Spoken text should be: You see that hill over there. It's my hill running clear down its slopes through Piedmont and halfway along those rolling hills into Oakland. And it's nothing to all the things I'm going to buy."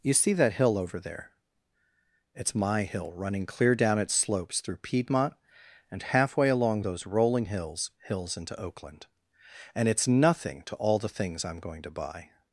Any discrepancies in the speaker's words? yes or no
yes